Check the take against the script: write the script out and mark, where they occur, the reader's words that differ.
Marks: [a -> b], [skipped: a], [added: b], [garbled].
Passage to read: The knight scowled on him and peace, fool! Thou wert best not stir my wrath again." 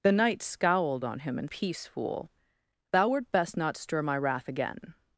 The knight scowled on him and peace, fool! Thou wert best not stir my wrath again."